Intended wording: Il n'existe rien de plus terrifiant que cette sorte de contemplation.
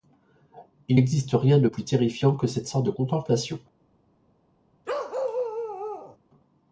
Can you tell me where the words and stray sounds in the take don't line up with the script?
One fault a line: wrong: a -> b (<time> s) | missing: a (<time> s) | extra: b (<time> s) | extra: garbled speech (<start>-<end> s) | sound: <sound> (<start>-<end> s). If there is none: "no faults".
sound: bark (4.9-6.2 s)